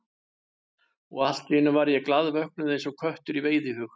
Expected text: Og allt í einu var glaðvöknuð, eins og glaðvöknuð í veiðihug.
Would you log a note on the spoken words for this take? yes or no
yes